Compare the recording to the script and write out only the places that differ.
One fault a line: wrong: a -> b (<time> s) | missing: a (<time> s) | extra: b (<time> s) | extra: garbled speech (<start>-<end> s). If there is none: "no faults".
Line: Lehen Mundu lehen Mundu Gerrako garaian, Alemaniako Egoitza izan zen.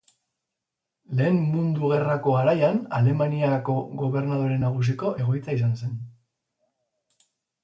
missing: lehen Mundu (1.9 s)
extra: Gobernadore Nagusiko (4.0 s)